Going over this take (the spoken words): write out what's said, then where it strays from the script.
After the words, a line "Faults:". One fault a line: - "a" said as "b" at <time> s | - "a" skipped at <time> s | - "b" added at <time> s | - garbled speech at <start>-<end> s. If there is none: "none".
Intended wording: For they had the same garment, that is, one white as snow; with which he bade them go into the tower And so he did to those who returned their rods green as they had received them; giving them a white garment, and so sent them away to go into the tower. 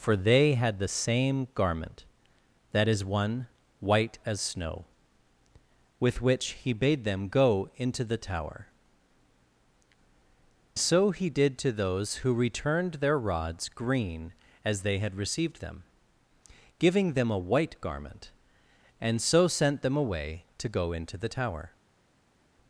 For they had the same garment, that is, one white as snow; with which he bade them go into the tower So he did to those who returned their rods green as they had received them; giving them a white garment, and so sent them away to go into the tower.
Faults:
- "And" skipped at 8.7 s